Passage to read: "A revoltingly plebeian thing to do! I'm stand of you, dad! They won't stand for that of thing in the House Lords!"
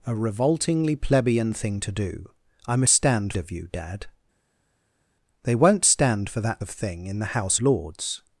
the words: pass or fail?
pass